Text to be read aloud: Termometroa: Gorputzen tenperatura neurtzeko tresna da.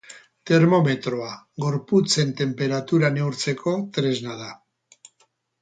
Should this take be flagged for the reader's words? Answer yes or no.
no